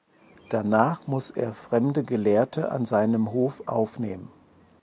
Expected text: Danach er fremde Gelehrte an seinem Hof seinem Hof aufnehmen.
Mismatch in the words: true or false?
true